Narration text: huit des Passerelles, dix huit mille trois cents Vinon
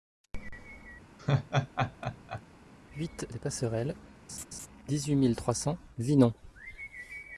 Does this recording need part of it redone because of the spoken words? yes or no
no